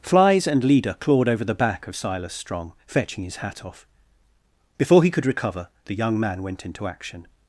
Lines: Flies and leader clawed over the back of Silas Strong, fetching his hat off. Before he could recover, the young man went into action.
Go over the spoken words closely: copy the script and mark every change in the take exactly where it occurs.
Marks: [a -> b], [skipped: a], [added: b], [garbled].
Flies and leader clawed over the back of Silas Strong, fetching his hat off. Before he could recover, the young man went into action.